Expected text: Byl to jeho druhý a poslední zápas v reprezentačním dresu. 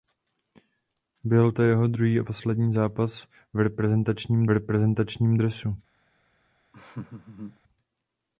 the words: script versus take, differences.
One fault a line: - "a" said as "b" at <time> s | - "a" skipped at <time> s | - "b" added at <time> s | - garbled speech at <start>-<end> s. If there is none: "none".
- "reprezentačním" added at 4.5 s